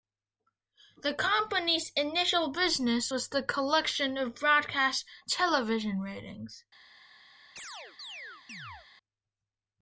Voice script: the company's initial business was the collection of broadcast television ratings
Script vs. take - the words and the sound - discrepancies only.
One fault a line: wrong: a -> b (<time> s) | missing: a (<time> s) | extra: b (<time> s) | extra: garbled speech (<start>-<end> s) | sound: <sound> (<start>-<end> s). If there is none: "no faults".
sound: chirp (7.6-8.9 s)